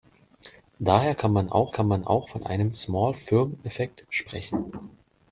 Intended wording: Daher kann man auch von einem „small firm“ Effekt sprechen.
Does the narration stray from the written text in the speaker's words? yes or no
yes